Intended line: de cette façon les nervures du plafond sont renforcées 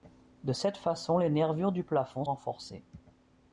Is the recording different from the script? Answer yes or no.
yes